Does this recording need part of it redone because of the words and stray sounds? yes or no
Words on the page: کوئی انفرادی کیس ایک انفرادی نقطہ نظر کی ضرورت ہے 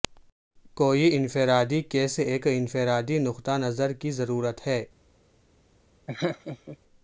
yes